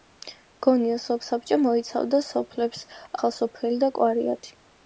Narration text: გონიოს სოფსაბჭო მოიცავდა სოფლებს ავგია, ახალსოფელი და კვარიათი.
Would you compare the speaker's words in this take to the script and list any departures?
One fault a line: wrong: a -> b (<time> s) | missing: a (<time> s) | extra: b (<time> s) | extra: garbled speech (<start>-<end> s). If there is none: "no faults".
missing: ავგია (2.8 s)